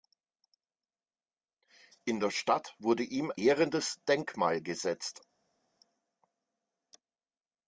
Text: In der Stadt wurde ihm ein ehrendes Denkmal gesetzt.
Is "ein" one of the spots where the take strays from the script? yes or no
yes